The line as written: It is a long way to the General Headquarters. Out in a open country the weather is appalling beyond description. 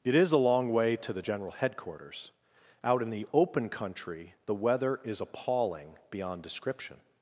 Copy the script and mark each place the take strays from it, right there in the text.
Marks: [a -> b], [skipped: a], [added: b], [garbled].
It is a long way to the General Headquarters. Out in [a -> the] open country the weather is appalling beyond description.